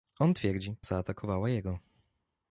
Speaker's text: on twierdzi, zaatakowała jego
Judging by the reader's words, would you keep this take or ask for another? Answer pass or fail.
pass